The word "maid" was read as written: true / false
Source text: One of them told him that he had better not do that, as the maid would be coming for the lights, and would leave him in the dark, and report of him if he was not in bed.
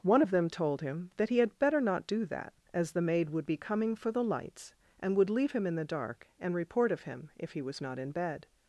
true